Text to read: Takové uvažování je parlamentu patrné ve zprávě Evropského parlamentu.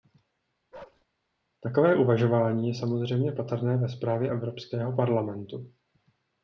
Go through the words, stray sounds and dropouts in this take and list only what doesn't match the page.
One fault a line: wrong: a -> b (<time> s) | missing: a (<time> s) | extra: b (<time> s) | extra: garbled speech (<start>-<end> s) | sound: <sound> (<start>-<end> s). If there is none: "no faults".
sound: bark (0.7-1.1 s)
wrong: parlamentu -> samozřejmě (2.7 s)